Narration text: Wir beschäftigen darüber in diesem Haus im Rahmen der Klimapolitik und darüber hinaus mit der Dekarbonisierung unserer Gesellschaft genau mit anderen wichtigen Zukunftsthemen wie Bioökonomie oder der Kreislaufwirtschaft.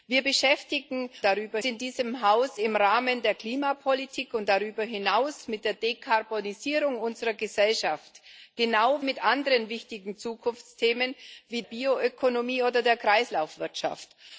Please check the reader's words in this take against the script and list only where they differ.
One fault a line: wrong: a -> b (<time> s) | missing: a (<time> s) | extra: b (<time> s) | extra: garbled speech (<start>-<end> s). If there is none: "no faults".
no faults